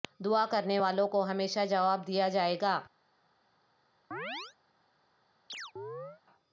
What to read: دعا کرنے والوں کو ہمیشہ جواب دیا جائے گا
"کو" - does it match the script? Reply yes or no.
yes